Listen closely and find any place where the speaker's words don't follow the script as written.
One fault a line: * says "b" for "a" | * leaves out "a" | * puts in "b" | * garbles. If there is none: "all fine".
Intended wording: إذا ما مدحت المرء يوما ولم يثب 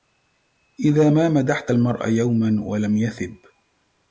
all fine